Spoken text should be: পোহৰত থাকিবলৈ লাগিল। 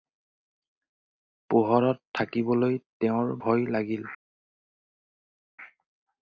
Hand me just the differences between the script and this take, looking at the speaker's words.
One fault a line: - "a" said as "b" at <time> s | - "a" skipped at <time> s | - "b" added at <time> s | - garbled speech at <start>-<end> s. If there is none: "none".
- "তেওঁৰ ভয়" added at 3.0 s